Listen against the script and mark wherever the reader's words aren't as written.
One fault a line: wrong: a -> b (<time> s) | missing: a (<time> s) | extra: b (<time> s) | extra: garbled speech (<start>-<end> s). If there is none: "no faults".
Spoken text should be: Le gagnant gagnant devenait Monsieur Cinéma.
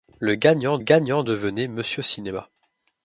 no faults